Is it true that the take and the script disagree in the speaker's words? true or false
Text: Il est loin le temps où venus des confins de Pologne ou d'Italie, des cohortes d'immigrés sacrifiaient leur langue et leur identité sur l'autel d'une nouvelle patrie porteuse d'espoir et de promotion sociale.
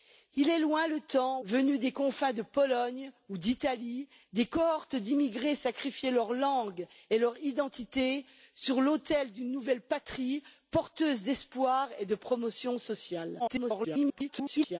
true